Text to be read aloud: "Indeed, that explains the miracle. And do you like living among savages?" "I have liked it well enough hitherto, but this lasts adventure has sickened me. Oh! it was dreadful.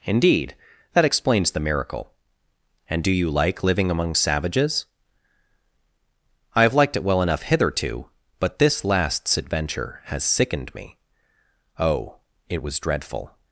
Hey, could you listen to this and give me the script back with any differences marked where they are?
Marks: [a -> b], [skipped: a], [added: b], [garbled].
"Indeed, that explains the miracle. And do you like living among savages?" "I have liked it well enough hitherto, but this lasts adventure has sickened me. Oh! it was dreadful.